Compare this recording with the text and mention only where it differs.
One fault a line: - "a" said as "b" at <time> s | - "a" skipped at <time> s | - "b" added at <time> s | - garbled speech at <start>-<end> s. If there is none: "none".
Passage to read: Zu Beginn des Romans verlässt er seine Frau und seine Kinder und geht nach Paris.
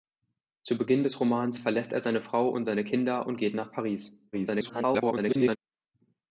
- garbled speech at 4.3-5.6 s